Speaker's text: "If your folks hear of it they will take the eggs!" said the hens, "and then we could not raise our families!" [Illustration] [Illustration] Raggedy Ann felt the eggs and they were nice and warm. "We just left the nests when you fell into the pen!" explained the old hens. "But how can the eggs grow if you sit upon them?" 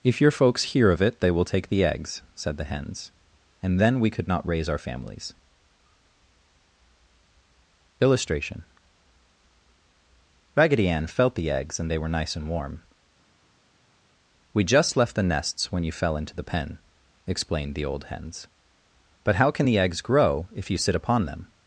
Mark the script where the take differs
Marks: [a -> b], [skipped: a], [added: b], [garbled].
"If your folks hear of it they will take the eggs!" said the hens, "and then we could not raise our families!" [Illustration] [skipped: [Illustration]] Raggedy Ann felt the eggs and they were nice and warm. "We just left the nests when you fell into the pen!" explained the old hens. "But how can the eggs grow if you sit upon them?"